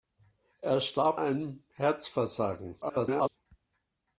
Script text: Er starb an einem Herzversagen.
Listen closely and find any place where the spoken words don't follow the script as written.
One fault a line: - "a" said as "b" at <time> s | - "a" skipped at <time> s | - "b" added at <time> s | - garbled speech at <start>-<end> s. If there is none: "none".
- "an" skipped at 1.2 s
- garbled speech at 2.8-3.3 s